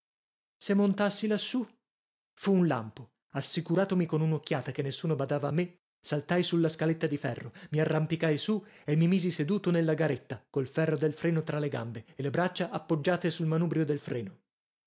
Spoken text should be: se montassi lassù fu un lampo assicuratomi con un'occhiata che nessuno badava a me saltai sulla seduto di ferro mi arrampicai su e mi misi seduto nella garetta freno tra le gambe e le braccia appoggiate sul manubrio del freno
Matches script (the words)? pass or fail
fail